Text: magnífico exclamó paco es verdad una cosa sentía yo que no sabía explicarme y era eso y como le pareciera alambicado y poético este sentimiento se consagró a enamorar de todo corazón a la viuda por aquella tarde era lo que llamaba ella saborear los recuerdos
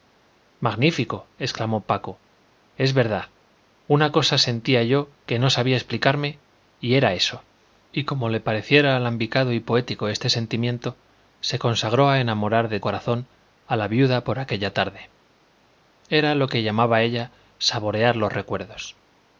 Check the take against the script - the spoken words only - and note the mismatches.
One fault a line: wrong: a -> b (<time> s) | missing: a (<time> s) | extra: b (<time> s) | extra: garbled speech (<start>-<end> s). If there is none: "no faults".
missing: todo (12.8 s)